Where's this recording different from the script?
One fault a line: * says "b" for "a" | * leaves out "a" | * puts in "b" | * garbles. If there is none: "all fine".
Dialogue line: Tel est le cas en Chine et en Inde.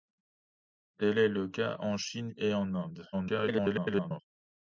* garbles